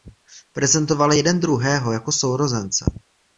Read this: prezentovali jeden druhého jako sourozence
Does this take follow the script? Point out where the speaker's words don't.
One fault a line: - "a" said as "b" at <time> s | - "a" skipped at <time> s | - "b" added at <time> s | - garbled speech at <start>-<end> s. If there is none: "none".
none